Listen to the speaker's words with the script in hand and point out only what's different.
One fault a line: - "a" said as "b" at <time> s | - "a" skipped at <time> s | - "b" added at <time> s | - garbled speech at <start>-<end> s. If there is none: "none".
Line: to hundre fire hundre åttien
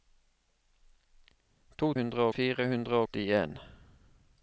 none